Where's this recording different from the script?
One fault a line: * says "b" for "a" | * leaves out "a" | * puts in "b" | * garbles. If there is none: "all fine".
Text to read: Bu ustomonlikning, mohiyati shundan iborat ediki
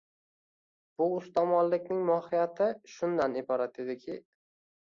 all fine